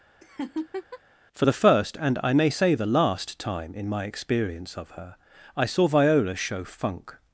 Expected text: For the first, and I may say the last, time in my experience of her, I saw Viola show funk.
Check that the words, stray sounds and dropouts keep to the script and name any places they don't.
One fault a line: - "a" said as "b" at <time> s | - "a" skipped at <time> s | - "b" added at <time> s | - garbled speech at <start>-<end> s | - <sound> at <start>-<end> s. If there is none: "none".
- laugh at 0.2-1.0 s